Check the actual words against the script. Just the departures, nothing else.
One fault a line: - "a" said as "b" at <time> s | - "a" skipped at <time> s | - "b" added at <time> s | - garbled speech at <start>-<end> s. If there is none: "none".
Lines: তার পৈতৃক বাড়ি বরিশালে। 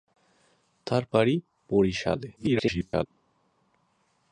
- "পৈতৃক" skipped at 1.0 s
- garbled speech at 2.3-3.1 s